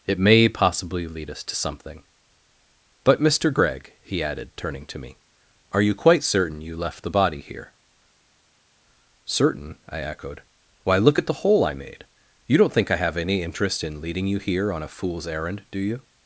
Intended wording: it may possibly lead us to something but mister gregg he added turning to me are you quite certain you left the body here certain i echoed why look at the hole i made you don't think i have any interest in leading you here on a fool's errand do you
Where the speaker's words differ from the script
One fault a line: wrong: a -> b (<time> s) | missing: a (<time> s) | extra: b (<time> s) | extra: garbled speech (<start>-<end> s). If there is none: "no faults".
no faults